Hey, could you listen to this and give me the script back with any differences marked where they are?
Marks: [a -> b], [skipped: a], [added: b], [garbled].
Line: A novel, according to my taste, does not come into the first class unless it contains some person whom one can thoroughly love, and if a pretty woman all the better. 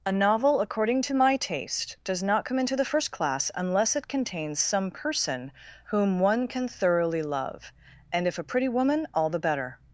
A novel, according to my taste, does not come into the first class unless it contains some person whom one can thoroughly love, and if a pretty woman all the better.